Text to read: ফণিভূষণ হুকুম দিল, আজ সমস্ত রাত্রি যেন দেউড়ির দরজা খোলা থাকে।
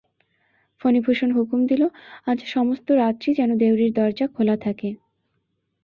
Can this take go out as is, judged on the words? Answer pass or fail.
pass